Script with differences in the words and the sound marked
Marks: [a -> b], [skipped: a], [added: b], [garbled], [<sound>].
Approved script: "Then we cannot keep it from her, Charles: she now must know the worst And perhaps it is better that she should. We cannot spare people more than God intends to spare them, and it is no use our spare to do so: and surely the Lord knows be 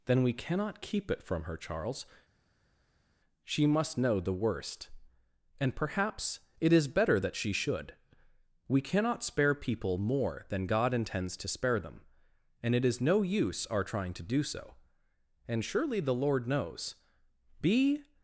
"Then we cannot keep it from her, Charles: she [skipped: now] must know the worst And perhaps it is better that she should. We cannot spare people more than God intends to spare them, and it is no use our [spare -> trying] to do so: and surely the Lord knows be